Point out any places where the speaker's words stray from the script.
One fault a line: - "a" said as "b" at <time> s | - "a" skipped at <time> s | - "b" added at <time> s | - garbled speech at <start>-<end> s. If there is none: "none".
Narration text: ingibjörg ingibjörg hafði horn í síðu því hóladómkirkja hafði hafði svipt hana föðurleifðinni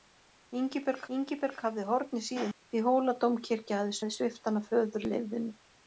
none